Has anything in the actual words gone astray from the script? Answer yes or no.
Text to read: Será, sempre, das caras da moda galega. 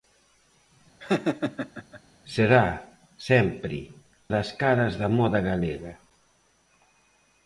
no